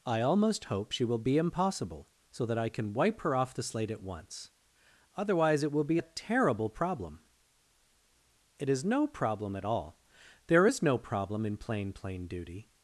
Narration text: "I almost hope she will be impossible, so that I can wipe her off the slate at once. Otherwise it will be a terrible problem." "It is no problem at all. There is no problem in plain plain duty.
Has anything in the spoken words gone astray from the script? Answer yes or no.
no